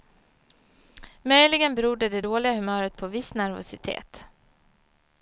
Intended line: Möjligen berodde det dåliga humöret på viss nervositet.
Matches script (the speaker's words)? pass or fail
pass